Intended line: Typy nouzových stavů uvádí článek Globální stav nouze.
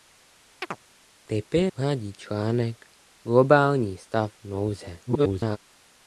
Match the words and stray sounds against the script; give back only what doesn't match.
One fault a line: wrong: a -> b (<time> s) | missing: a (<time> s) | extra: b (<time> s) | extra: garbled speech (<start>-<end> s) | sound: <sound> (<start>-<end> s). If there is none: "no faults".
sound: chirp (0.6-0.8 s)
missing: nouzových stavů (1.7 s)
extra: garbled speech (5.1-5.6 s)